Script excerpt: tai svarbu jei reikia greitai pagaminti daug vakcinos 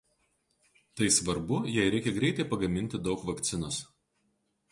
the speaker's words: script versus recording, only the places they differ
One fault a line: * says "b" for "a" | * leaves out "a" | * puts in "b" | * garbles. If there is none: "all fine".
all fine